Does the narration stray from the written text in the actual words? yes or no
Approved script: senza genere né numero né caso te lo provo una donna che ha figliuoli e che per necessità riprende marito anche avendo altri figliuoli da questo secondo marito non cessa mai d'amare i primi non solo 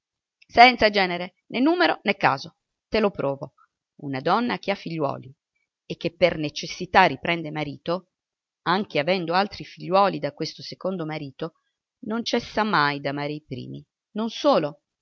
no